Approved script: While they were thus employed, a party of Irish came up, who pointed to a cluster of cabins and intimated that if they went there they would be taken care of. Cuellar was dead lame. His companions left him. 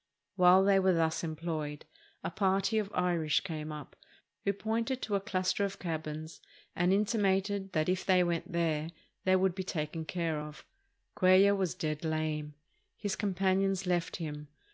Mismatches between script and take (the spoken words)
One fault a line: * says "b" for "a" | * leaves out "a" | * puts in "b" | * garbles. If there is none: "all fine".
all fine